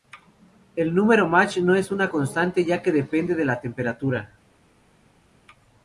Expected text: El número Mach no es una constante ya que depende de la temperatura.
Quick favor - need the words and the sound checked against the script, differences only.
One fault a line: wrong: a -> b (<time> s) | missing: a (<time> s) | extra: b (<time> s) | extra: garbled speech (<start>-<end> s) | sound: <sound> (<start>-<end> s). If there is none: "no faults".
no faults